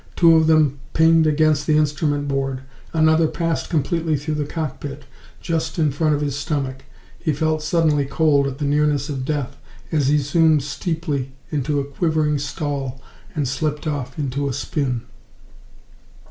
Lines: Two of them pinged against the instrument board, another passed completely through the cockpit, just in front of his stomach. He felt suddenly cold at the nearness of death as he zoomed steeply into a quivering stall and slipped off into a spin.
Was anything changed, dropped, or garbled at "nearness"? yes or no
no